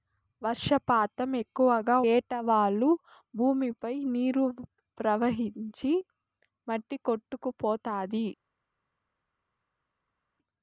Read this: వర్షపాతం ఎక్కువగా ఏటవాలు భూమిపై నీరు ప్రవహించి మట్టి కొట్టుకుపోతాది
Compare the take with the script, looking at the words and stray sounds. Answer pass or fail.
pass